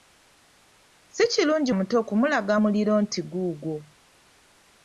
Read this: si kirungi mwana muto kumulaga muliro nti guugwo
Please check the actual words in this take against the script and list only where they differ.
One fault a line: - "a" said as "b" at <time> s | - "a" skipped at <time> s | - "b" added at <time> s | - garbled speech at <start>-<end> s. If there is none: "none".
- "mwana" skipped at 1.7 s